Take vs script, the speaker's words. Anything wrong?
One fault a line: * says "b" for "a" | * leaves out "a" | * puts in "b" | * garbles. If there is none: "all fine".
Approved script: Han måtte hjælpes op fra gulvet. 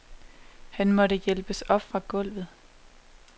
all fine